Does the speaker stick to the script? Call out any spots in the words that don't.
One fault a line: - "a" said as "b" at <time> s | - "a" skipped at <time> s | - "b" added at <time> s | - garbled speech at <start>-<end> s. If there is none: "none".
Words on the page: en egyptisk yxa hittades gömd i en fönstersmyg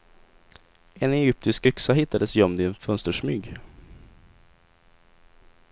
none